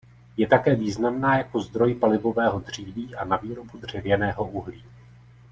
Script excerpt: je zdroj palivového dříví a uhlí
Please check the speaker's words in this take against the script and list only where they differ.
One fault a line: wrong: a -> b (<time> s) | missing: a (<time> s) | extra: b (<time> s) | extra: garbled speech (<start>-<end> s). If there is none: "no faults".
extra: také významná jako (0.5 s)
extra: na výrobu dřevěného (3.2 s)